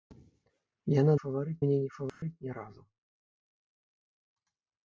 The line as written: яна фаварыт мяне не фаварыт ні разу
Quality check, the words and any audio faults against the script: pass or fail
fail